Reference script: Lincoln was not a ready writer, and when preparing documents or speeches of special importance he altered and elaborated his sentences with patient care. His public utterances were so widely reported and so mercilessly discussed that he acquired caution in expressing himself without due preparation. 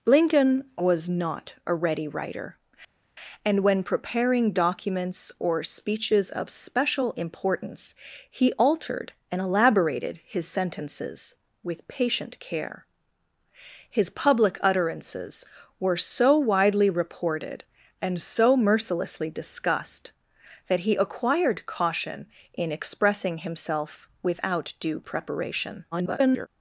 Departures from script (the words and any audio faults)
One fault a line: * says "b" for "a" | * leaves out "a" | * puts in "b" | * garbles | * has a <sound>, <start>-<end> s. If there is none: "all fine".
* garbles